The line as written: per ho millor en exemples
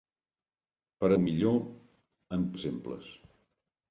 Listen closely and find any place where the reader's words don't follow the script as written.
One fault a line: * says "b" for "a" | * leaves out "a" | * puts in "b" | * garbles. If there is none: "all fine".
all fine